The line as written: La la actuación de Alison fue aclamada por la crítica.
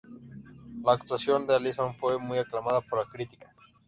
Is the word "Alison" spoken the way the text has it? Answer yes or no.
yes